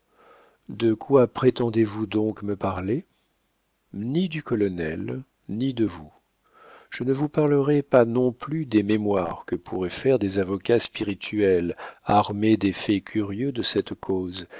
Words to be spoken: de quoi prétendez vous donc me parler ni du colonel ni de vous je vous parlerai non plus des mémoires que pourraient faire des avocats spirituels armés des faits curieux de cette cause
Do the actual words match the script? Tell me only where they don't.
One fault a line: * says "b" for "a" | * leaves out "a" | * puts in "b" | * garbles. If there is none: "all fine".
* puts in "ne"
* puts in "pas"